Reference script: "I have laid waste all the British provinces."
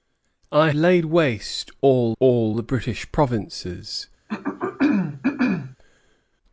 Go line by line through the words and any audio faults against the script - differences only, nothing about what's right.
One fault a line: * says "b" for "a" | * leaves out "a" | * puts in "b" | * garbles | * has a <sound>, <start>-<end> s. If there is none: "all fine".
* leaves out "have"
* puts in "all"
* has a throat clearing, 4.3-5.8 s